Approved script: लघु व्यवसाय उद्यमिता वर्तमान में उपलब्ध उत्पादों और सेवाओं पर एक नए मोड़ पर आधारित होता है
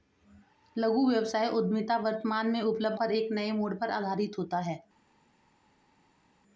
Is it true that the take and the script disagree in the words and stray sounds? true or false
true